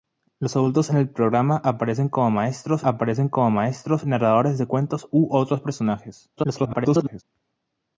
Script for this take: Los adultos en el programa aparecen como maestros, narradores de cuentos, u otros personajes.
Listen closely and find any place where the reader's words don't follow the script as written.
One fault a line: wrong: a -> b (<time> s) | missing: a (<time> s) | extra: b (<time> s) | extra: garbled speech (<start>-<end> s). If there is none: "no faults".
extra: aparecen como maestros (2.8 s)
extra: garbled speech (6.4-7.2 s)